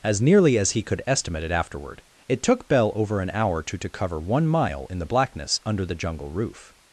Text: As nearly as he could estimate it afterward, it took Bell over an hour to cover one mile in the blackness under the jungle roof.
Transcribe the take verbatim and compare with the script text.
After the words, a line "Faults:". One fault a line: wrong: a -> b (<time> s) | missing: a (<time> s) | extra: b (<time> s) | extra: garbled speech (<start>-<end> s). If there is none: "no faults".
As nearly as he could estimate it afterward, it took Bell over an hour to to cover one mile in the blackness under the jungle roof.
Faults:
extra: to (3.8 s)